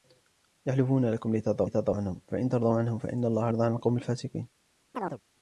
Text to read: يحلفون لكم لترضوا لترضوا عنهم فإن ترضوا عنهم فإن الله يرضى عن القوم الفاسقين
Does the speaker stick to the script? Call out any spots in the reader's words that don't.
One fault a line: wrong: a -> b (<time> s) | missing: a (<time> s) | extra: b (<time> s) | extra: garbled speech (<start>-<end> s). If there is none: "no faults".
no faults